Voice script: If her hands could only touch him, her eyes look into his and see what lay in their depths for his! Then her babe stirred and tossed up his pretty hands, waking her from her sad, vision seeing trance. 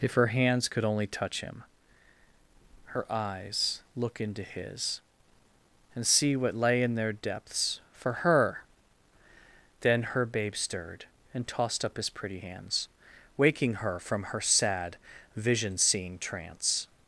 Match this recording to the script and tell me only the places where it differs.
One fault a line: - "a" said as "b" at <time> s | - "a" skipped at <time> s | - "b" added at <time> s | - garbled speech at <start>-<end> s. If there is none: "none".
- "his" said as "her" at 8.2 s